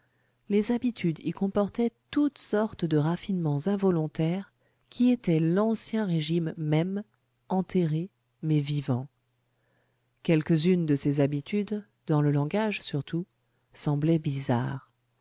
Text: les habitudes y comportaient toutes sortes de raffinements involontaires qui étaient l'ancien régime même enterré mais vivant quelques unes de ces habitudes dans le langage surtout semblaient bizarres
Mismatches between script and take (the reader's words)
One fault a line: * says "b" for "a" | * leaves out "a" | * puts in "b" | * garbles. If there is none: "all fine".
all fine